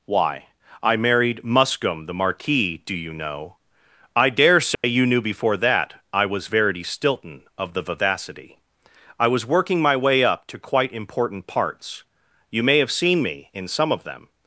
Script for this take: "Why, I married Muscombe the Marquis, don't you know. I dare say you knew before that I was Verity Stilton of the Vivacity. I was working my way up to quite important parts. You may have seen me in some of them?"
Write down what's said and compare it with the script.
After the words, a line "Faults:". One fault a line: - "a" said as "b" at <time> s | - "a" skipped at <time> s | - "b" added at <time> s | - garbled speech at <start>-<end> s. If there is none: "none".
"Why, I married Muscombe the Marquis, do you know. I dare say you knew before that I was Verity Stilton of the Vivacity. I was working my way up to quite important parts. You may have seen me in some of them?"
Faults:
- "don't" said as "do" at 2.9 s